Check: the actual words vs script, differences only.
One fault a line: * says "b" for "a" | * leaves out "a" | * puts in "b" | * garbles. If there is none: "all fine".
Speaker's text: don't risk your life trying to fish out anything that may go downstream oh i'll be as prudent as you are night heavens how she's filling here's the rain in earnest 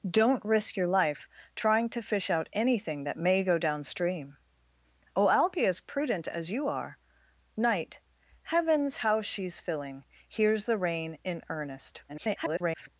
* garbles